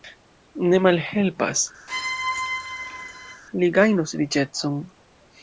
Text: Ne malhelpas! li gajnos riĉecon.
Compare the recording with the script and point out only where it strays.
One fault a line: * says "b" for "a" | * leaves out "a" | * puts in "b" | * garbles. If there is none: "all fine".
all fine